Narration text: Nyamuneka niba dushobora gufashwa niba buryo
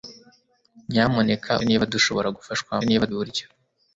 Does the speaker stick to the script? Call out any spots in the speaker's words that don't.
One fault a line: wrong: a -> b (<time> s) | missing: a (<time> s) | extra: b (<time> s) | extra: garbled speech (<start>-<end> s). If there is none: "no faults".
no faults